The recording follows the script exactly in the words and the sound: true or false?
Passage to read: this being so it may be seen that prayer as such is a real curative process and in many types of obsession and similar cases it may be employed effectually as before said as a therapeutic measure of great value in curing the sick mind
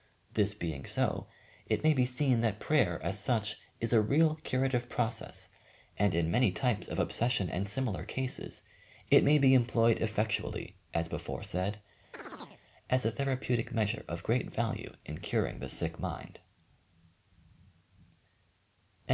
false